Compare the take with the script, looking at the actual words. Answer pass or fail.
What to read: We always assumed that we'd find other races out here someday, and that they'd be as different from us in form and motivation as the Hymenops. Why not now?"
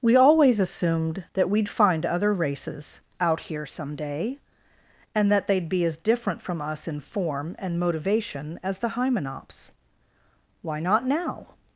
pass